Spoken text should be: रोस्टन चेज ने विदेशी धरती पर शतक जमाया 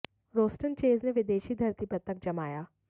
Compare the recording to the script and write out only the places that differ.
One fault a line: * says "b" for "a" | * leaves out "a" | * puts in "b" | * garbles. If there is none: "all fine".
all fine